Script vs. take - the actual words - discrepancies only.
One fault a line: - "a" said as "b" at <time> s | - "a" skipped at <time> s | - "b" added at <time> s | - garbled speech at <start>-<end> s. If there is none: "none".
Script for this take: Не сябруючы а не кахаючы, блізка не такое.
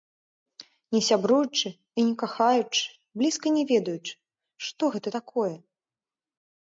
- "а" said as "і" at 1.7 s
- "ведаючы што гэта" added at 3.7 s